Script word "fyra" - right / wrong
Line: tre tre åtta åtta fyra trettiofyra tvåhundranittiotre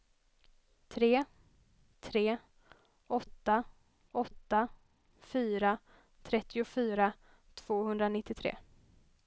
right